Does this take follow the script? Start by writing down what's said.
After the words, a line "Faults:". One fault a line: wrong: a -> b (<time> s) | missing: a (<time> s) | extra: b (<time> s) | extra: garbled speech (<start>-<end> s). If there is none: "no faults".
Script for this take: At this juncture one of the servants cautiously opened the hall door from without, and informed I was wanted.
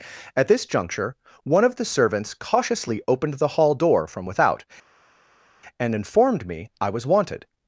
At this juncture one of the servants cautiously opened the hall door from without, and informed me I was wanted.
Faults:
extra: me (6.5 s)